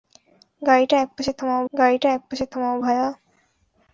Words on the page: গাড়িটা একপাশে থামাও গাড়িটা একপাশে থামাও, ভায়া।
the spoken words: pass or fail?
pass